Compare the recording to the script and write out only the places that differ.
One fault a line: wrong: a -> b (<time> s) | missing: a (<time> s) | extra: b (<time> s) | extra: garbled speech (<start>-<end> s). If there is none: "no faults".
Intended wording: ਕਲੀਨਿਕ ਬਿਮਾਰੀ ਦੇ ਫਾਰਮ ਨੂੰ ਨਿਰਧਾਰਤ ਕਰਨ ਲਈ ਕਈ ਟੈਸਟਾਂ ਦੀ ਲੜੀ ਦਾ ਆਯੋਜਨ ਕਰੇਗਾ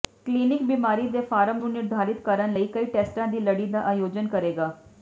no faults